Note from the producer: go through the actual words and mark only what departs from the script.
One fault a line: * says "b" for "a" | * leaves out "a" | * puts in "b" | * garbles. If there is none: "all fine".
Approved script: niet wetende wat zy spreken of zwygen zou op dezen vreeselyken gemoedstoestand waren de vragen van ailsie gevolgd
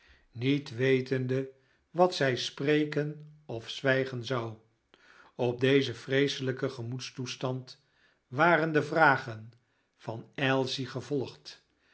all fine